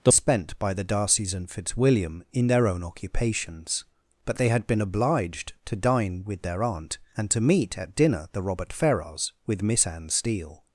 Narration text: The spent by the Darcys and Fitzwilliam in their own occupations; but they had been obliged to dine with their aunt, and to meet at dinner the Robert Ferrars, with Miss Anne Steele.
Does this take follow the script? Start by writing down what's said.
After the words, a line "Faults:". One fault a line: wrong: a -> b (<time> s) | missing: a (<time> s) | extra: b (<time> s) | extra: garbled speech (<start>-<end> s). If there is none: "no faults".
The spent by the Darcys and Fitzwilliam in their own occupations; but they had been obliged to dine with their aunt, and to meet at dinner the Robert Ferrars, with Miss Anne Steele.
Faults:
no faults